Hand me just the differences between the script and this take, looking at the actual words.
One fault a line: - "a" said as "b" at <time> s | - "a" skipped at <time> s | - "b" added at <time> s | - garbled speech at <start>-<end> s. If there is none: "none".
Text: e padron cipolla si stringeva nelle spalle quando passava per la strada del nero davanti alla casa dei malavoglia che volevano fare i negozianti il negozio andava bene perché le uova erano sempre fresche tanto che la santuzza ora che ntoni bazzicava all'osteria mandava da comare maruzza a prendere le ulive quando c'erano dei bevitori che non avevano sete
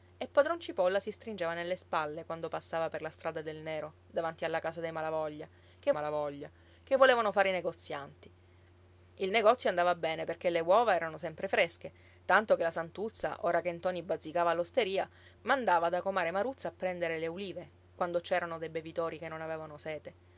- "malavoglia che" added at 5.9 s